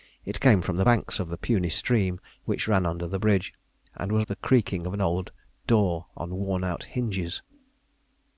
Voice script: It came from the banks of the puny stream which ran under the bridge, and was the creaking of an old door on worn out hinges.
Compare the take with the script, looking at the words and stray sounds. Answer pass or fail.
pass